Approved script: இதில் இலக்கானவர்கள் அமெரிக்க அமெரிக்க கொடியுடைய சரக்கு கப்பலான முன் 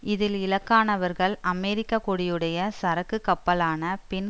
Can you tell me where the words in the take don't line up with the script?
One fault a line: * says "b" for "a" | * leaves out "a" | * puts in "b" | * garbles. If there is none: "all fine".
* leaves out "அமெரிக்க"
* says "பின்" for "முன்"